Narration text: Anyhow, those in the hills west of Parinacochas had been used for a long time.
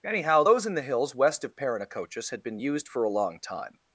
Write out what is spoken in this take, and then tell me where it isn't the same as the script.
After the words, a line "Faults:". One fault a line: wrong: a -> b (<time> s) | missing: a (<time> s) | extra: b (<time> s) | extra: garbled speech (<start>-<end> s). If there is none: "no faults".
Anyhow, those in the hills west of Parinacochas had been used for a long time.
Faults:
no faults